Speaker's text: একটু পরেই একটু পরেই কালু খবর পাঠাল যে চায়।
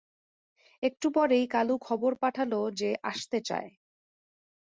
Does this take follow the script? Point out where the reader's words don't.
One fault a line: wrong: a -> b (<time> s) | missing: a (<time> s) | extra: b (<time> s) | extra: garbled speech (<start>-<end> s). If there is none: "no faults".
missing: একটু পরেই (1.4 s)
extra: আসতে (3.0 s)